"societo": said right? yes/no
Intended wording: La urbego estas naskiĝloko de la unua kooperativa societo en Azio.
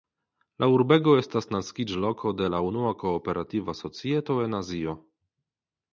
yes